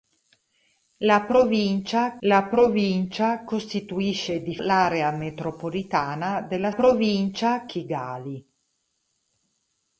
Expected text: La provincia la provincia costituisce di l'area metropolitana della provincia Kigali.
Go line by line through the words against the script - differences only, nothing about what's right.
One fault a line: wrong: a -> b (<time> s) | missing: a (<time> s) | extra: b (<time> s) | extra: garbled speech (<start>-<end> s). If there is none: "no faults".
no faults